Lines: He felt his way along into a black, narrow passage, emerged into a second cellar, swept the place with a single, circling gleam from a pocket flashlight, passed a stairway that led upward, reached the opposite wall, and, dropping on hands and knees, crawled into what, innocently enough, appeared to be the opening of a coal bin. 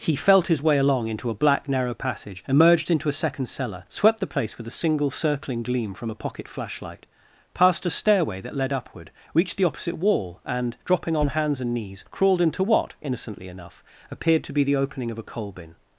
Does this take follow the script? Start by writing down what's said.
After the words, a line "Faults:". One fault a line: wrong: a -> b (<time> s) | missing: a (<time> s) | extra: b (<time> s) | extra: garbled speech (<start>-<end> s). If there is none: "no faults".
He felt his way along into a black, narrow passage, emerged into a second cellar, swept the place with a single, circling gleam from a pocket flashlight, passed a stairway that led upward, reached the opposite wall, and, dropping on hands and knees, crawled into what, innocently enough, appeared to be the opening of a coal bin.
Faults:
no faults